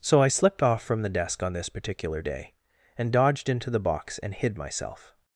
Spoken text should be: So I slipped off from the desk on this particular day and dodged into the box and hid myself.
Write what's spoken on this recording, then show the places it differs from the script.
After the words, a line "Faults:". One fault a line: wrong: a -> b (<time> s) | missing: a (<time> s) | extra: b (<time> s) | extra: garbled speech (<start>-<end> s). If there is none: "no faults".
So I slipped off from the desk on this particular day and dodged into the box and hid myself.
Faults:
no faults